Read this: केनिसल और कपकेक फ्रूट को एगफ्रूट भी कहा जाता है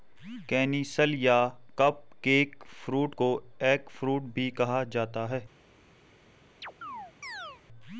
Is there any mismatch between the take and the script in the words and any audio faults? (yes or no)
yes